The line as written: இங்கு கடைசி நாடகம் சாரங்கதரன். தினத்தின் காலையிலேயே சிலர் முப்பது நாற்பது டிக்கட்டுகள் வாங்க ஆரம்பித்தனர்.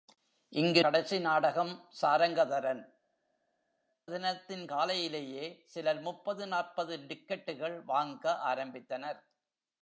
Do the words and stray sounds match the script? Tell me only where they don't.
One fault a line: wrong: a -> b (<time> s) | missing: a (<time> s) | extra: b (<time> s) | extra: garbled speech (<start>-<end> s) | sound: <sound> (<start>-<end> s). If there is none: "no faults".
no faults